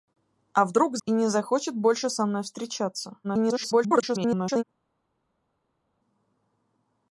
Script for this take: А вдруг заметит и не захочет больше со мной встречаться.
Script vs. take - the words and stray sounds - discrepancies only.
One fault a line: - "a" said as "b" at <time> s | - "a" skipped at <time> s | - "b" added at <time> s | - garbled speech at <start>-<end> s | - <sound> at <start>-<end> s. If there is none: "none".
- "заметит" skipped at 1.0 s
- garbled speech at 3.2-4.6 s